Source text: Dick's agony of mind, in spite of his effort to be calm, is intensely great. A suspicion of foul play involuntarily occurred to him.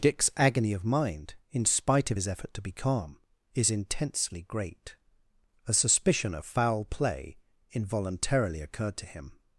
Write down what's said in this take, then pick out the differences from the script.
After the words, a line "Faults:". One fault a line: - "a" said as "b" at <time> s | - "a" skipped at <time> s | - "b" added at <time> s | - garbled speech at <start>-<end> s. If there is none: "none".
Dick's agony of mind, in spite of his effort to be calm, is intensely great. A suspicion of foul play involuntarily occurred to him.
Faults:
none